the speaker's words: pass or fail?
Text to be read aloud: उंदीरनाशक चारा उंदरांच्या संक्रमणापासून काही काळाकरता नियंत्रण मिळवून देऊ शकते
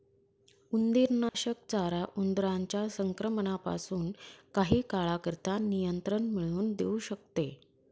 pass